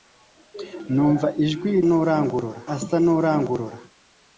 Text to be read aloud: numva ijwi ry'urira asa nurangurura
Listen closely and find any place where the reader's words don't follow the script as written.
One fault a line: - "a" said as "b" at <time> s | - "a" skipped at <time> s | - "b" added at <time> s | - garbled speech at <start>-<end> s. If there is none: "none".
- "ry'urira" said as "nurangurura" at 1.9 s